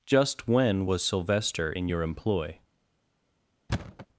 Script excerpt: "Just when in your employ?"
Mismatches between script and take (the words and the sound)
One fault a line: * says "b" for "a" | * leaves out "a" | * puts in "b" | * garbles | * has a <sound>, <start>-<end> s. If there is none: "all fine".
* puts in "was Sylvester"
* has a thud, 3.7-4.1 s